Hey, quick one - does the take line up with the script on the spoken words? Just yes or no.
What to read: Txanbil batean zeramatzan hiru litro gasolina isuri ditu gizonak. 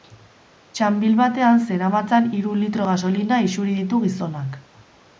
yes